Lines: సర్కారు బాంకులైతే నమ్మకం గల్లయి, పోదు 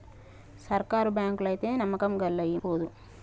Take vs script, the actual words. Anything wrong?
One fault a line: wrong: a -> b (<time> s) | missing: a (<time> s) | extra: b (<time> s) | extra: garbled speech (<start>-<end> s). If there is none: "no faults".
no faults